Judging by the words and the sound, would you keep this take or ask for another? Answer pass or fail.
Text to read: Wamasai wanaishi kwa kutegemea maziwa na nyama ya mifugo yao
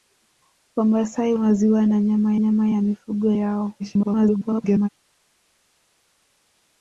fail